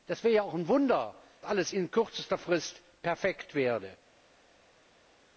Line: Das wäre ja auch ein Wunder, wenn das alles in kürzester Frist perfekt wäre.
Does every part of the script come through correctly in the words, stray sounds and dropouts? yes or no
no